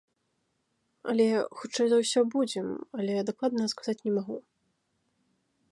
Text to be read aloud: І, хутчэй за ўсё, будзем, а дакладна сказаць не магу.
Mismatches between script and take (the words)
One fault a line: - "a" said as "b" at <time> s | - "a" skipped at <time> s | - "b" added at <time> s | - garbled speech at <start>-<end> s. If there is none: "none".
- "І" said as "Але" at 1.1 s
- "а" said as "але" at 3.0 s